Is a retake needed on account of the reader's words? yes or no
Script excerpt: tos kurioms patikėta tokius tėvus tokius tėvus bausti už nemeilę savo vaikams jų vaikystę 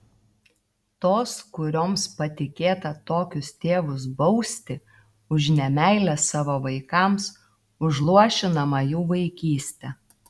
yes